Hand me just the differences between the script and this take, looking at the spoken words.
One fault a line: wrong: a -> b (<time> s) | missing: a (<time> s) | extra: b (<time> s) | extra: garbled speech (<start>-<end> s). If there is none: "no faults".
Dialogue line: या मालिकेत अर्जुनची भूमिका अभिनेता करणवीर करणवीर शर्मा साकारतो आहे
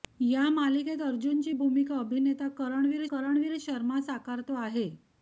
no faults